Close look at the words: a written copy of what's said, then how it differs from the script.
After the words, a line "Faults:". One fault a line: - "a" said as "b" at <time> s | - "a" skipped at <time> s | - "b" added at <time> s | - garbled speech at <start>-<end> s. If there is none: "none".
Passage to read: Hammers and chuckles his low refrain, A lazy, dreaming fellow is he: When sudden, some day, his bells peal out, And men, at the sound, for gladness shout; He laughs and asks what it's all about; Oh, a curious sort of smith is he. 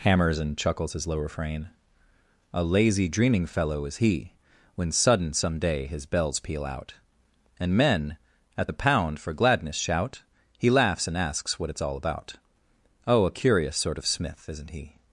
Hammers and chuckles his low refrain, A lazy, dreaming fellow is he: When sudden, some day, his bells peal out, And men, at the pound, for gladness shout; He laughs and asks what it's all about; Oh, a curious sort of smith isn't he.
Faults:
- "sound" said as "pound" at 8.7 s
- "is" said as "isn't" at 14.5 s